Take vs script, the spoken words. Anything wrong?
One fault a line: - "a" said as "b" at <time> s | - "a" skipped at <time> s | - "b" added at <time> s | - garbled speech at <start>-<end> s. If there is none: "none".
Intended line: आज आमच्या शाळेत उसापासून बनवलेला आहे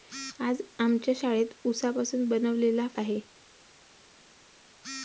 none